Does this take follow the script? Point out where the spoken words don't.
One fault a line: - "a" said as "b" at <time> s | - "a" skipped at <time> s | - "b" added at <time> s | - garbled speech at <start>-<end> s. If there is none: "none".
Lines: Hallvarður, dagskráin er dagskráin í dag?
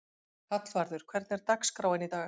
- "dagskráin" said as "hvernig" at 1.1 s